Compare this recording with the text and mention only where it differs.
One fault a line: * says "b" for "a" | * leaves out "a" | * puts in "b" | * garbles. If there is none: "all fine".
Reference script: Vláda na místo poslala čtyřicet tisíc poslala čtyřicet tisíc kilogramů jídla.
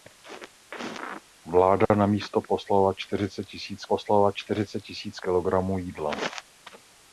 all fine